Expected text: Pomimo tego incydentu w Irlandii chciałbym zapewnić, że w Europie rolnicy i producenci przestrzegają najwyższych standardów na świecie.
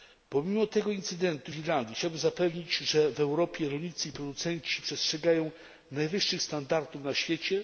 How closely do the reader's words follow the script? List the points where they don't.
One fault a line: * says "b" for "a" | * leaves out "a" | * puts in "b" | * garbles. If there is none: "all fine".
all fine